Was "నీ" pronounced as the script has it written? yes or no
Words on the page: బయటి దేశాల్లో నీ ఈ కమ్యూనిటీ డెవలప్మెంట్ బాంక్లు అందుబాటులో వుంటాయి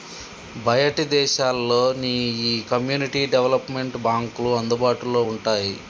yes